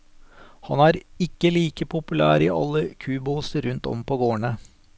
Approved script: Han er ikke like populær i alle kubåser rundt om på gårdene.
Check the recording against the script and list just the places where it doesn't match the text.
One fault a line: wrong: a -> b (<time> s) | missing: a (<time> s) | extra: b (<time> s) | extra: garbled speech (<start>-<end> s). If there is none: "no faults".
no faults